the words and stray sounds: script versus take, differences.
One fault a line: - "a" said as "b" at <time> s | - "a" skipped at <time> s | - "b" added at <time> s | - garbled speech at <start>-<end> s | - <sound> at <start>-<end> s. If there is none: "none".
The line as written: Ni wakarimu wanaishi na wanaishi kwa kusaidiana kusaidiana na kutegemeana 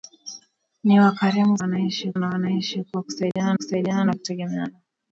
- dropout at 3.3-3.4 s